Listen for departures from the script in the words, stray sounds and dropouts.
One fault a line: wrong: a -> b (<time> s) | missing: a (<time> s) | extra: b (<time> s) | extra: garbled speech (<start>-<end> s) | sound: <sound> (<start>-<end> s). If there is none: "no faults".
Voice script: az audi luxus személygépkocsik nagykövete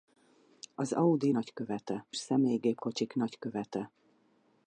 wrong: luxus -> nagykövete (1.3 s)